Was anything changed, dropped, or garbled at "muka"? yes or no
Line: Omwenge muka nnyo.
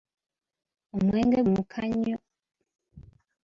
no